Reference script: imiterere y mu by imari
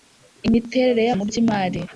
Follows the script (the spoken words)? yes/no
yes